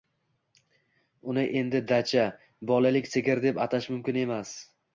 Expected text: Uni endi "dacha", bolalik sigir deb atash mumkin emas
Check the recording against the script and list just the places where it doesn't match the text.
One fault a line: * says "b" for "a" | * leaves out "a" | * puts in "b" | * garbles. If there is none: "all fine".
all fine